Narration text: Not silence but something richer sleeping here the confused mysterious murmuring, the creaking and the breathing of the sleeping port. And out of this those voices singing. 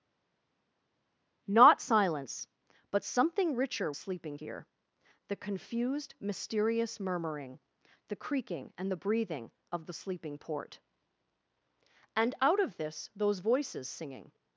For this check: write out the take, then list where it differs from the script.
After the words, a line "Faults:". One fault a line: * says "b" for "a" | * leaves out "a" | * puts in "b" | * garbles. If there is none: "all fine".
Not silence but something richer sleeping here the confused mysterious murmuring, the creaking and the breathing of the sleeping port. And out of this those voices singing.
Faults:
all fine